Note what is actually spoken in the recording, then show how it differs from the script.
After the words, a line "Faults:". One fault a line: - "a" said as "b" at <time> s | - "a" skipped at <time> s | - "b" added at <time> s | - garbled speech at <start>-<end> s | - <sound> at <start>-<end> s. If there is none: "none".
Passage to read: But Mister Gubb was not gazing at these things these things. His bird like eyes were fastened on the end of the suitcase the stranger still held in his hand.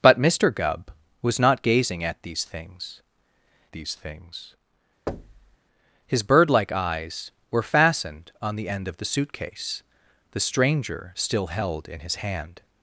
But Mister Gubb was not gazing at these things these things. His bird like eyes were fastened on the end of the suitcase the stranger still held in his hand.
Faults:
- thud at 5.1-5.6 s